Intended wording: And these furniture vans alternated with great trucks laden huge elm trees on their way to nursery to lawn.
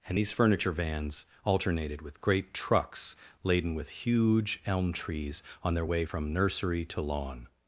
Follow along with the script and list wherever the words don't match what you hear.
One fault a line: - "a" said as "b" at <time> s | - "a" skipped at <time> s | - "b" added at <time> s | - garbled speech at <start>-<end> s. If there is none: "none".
- "with" added at 3.7 s
- "to" said as "from" at 6.0 s